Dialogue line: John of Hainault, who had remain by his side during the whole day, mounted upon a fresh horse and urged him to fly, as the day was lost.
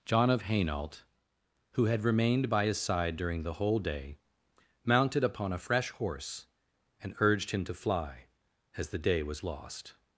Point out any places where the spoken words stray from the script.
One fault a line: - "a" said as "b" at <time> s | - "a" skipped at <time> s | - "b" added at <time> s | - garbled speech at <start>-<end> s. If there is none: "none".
- "remain" said as "remained" at 2.0 s